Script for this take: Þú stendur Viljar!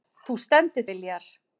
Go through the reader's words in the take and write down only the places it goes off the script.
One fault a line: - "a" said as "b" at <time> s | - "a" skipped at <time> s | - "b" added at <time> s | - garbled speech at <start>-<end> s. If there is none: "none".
none